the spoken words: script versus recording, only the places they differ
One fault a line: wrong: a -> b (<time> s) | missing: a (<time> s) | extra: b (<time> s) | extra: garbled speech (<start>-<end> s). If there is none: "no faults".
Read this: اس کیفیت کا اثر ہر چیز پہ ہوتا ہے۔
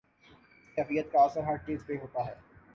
no faults